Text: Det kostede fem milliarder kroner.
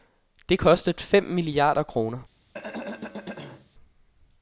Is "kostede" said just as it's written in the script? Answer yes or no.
yes